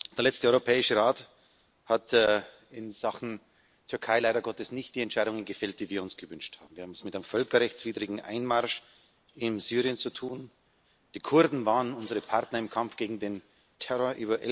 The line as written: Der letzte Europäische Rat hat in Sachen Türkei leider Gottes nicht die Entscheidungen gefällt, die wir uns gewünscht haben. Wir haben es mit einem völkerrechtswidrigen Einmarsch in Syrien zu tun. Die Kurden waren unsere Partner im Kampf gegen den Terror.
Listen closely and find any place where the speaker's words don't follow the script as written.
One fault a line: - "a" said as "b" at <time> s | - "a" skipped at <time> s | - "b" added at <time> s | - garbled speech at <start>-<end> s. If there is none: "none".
none